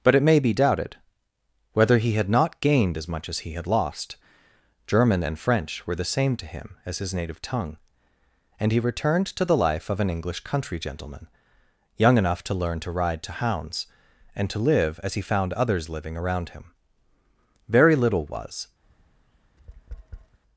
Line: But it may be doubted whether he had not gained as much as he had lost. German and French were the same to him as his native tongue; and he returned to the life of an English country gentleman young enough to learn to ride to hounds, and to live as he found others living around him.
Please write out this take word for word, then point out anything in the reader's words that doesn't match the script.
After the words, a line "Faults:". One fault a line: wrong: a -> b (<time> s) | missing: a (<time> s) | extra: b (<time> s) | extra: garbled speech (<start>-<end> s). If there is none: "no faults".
But it may be doubted whether he had not gained as much as he had lost. German and French were the same to him as his native tongue; and he returned to the life of an English country gentleman young enough to learn to ride to hounds, and to live as he found others living around him. Very little was
Faults:
extra: Very little was (17.7 s)